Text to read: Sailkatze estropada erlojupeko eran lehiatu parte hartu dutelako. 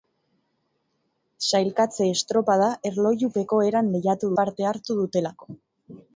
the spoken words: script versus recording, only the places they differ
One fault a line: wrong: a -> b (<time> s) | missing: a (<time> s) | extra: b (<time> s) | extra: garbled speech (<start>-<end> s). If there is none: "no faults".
no faults